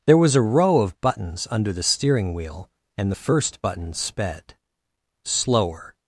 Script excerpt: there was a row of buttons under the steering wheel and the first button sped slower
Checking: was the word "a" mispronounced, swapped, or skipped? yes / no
no